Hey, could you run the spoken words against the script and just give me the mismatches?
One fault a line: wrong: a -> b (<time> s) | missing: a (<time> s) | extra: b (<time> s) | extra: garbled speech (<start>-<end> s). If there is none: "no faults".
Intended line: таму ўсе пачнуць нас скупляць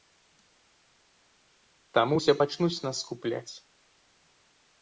no faults